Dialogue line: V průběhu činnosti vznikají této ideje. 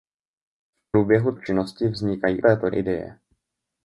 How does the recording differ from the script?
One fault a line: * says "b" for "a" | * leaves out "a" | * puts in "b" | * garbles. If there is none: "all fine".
all fine